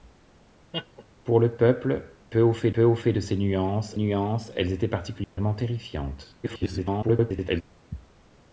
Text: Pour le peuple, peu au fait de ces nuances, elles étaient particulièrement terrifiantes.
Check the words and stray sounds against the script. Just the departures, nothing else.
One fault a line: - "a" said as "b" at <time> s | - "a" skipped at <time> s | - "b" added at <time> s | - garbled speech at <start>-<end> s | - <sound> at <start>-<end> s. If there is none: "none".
- laugh at 0.7-1.0 s
- "peu au fait" added at 2.7 s
- "nuances" added at 3.9 s
- dropout at 5.2-5.4 s
- garbled speech at 6.4-7.6 s